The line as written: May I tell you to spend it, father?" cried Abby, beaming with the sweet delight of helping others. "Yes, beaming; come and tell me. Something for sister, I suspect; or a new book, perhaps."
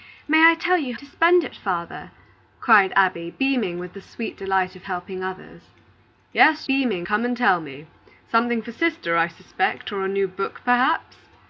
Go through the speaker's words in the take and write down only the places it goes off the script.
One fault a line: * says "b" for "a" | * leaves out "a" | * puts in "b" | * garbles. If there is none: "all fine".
all fine